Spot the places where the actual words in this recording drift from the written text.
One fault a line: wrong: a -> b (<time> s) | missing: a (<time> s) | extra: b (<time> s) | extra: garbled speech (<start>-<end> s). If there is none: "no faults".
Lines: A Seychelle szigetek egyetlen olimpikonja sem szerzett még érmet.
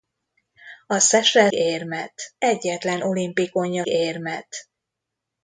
wrong: szigetek -> érmet (1.5 s)
missing: sem szerzett még (3.8 s)